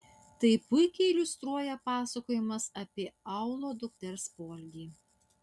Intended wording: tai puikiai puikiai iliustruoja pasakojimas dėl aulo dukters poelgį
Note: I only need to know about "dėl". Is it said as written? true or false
false